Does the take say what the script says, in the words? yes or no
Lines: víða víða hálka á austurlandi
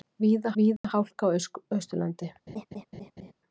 yes